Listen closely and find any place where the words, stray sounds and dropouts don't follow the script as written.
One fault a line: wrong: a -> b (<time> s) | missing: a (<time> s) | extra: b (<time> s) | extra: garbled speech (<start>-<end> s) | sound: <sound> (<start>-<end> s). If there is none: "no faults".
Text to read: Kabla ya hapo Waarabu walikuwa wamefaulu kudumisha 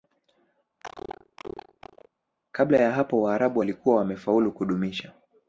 sound: cough (0.8-2.1 s)